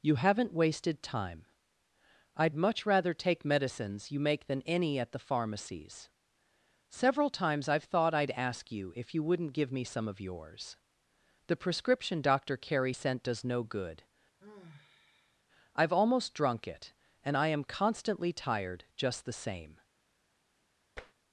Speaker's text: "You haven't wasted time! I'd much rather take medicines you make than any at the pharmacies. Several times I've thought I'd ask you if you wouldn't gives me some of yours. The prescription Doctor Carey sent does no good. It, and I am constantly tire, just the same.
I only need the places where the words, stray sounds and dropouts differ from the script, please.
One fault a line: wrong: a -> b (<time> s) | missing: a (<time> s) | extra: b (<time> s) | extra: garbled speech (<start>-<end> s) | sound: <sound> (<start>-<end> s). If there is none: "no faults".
wrong: gives -> give (9.5 s)
sound: sigh (14.4-15.4 s)
extra: I've almost drunk (15.8 s)
wrong: tire -> tired (18.3 s)
sound: tap (21.0-21.1 s)